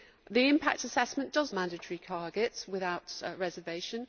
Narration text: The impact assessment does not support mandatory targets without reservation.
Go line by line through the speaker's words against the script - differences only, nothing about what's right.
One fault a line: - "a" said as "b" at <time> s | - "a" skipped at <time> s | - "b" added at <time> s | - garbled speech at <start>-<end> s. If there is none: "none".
- "not support" skipped at 1.5 s